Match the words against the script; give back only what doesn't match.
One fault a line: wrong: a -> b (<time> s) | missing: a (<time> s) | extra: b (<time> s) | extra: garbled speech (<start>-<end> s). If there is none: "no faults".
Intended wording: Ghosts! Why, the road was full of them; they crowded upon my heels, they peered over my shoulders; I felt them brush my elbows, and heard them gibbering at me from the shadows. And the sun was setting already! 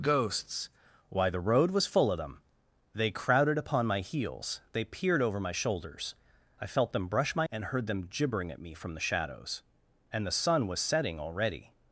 missing: elbows (7.5 s)